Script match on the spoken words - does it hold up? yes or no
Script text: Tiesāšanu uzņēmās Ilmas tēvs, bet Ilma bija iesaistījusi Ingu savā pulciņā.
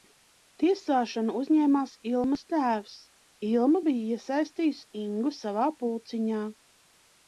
no